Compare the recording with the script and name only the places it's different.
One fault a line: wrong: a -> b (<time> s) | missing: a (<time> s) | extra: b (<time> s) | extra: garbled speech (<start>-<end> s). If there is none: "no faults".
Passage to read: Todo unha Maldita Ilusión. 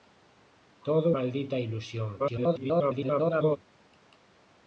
missing: unha (1.1 s)
extra: garbled speech (2.2-3.6 s)